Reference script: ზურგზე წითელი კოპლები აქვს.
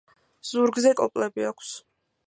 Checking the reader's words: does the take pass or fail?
fail